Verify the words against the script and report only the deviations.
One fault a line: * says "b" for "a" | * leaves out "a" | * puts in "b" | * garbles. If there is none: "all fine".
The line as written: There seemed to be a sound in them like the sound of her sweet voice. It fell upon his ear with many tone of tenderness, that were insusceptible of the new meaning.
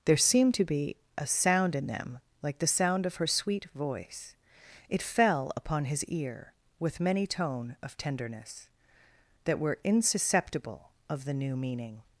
all fine